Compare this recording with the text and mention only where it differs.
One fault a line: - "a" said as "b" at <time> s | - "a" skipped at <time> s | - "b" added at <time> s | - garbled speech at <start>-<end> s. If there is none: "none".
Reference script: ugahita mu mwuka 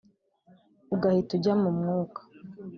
- "ujya" added at 1.4 s